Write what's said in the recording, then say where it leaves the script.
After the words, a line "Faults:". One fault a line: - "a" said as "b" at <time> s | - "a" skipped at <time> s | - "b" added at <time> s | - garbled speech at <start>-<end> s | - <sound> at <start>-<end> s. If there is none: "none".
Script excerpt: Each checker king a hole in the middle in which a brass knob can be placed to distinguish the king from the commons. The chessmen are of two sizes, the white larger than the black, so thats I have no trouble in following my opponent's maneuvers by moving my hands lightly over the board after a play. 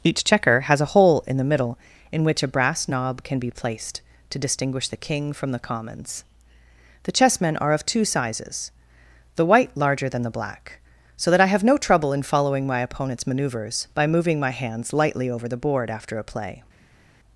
Each checker has a hole in the middle in which a brass knob can be placed to distinguish the king from the commons. The chessmen are of two sizes, the white larger than the black, so that I have no trouble in following my opponent's maneuvers by moving my hands lightly over the board after a play.
Faults:
- "king" said as "has" at 0.6 s
- "thats" said as "that" at 11.3 s